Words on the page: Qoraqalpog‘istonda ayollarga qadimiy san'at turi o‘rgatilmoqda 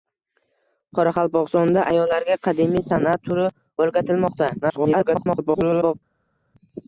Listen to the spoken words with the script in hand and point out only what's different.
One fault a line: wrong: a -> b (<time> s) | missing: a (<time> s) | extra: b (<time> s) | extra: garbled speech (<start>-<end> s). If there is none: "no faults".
extra: garbled speech (4.6-5.9 s)